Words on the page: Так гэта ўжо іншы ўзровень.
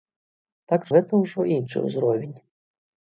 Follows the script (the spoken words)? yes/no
yes